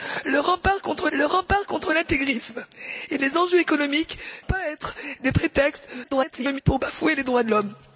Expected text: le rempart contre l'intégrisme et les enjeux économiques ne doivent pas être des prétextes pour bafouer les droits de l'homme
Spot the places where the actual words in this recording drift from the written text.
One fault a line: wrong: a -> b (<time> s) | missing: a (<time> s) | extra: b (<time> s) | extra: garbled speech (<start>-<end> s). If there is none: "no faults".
extra: le rempart contre (1.1 s)
missing: ne doivent (4.2 s)
extra: garbled speech (6.0-6.6 s)